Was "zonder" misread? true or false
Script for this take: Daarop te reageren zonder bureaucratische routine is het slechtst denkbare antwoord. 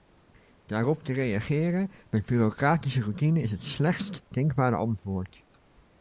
true